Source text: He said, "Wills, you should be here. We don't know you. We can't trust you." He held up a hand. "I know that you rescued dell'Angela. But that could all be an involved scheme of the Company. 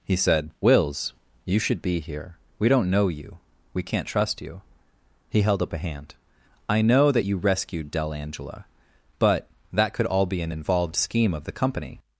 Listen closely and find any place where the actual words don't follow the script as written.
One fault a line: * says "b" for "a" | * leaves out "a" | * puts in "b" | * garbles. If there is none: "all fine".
all fine